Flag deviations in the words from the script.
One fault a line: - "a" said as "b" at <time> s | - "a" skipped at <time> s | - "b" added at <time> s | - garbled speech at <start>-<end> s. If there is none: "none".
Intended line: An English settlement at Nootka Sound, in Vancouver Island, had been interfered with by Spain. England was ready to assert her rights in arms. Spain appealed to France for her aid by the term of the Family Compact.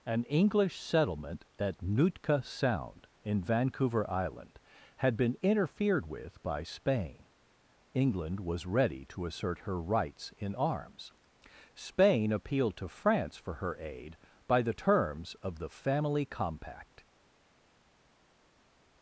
- "term" said as "terms" at 14.7 s